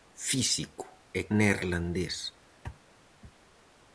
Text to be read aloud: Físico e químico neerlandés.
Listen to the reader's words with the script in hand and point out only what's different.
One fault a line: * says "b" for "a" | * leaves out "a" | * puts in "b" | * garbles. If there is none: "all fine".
* leaves out "químico"